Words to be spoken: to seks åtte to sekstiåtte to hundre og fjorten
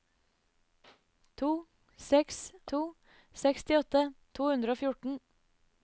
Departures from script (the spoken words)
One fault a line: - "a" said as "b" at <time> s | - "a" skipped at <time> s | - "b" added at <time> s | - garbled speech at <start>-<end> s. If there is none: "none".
- "åtte" skipped at 2.4 s